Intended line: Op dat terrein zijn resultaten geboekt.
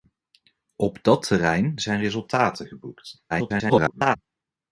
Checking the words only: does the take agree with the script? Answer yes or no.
no